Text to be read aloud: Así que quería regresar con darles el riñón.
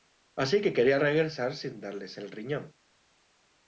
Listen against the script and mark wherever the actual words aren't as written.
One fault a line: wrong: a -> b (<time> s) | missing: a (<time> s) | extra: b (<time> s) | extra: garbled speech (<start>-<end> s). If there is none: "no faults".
wrong: con -> sin (1.5 s)